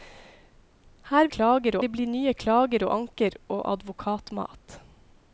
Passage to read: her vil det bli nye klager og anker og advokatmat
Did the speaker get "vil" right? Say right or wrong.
wrong